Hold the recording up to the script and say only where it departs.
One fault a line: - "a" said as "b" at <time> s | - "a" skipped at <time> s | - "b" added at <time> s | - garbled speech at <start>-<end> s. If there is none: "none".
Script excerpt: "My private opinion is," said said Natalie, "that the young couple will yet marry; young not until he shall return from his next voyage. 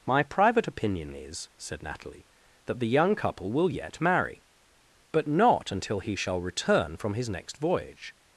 - "said" skipped at 1.8 s
- "young" said as "but" at 5.1 s